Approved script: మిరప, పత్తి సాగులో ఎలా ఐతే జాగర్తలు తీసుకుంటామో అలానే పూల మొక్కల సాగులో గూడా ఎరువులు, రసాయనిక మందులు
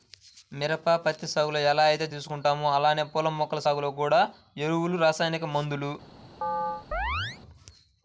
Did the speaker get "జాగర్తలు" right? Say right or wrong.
wrong